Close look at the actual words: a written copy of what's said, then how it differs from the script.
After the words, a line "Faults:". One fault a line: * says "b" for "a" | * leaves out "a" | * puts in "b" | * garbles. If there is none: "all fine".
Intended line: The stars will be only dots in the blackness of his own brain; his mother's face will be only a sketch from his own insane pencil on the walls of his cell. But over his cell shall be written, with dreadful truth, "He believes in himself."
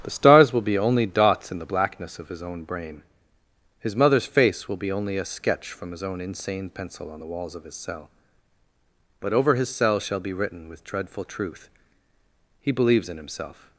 The stars will be only dots in the blackness of his own brain; his mother's face will be only a sketch from his own insane pencil on the walls of his cell. But over his cell shall be written, with dreadful truth, "He believes in himself."
Faults:
all fine